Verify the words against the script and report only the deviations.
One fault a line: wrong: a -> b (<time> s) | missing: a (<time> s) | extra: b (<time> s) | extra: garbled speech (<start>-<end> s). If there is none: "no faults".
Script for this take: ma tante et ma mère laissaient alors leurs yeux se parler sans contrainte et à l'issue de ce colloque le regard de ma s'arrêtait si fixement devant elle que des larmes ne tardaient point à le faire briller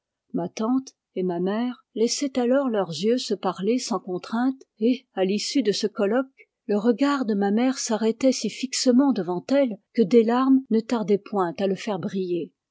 extra: mère (7.5 s)